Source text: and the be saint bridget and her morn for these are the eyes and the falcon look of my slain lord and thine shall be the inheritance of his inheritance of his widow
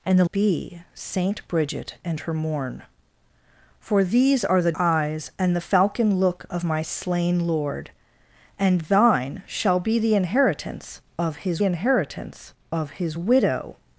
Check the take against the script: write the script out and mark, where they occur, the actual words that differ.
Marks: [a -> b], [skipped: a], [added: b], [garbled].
and the be saint bridget and her morn for these are the eyes and the falcon look of my slain lord and thine shall be the inheritance of his inheritance of his widow